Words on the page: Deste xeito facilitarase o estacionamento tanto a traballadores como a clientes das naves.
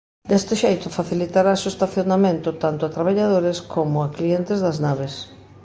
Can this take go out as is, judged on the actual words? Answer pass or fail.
pass